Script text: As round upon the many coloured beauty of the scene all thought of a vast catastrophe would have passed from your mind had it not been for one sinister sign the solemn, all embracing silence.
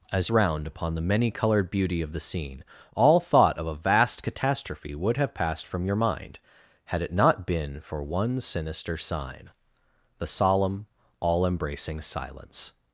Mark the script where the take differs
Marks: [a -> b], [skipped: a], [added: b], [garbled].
As round upon the many coloured beauty of the scene all thought of a vast catastrophe would have passed from your mind had it not been for one sinister sign the solemn, all embracing silence.